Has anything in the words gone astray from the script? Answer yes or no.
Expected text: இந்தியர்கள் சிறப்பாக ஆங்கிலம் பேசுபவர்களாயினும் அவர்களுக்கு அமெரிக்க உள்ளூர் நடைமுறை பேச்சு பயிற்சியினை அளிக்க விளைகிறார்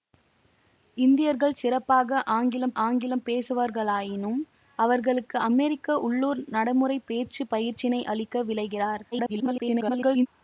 yes